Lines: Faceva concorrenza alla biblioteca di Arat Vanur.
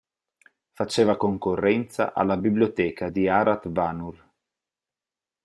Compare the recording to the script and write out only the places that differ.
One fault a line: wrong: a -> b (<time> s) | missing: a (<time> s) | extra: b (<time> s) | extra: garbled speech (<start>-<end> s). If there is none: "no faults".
no faults